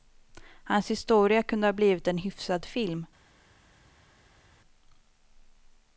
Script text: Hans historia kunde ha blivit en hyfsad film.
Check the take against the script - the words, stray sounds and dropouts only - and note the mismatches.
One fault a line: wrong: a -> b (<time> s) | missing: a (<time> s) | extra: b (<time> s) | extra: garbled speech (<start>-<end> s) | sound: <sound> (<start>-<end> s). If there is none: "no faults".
no faults